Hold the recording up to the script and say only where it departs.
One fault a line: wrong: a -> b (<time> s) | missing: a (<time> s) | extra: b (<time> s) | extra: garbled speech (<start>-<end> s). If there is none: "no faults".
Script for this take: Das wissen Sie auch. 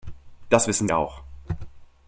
missing: Sie (0.9 s)